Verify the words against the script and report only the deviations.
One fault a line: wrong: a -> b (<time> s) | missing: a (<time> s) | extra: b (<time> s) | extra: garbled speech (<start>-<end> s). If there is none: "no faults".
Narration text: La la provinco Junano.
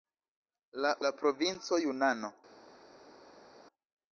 no faults